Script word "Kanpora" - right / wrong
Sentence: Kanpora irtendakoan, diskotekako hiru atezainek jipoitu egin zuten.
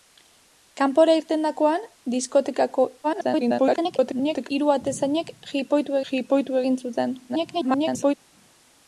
right